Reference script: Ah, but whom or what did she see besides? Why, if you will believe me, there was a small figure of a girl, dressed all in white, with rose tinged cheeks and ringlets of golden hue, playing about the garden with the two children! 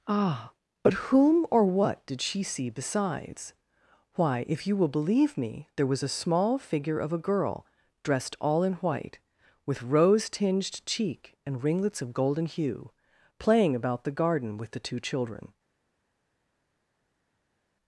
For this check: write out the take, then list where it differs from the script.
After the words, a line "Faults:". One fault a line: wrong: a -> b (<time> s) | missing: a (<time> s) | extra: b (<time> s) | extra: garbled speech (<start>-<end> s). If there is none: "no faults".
Ah, but whom or what did she see besides? Why, if you will believe me, there was a small figure of a girl, dressed all in white, with rose tinged cheek and ringlets of golden hue, playing about the garden with the two children!
Faults:
wrong: cheeks -> cheek (10.8 s)